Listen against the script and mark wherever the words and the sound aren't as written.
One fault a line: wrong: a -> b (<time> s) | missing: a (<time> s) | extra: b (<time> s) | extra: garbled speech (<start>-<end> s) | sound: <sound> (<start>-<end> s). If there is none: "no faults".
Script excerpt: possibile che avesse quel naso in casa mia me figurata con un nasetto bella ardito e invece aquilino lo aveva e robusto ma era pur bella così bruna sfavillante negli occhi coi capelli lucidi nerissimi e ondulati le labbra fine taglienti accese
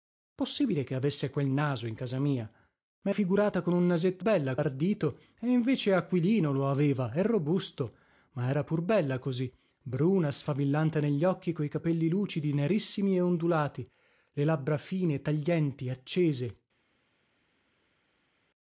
no faults